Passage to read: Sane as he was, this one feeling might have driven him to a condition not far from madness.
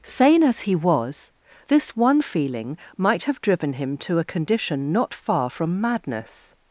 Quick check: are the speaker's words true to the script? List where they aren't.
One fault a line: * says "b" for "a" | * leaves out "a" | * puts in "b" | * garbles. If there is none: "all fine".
all fine